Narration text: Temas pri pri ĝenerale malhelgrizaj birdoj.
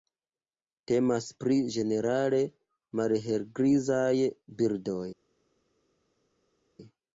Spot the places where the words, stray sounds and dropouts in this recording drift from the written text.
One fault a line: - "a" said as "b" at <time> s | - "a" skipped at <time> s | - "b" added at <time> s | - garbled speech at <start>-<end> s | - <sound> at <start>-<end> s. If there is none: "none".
- "pri" skipped at 1.6 s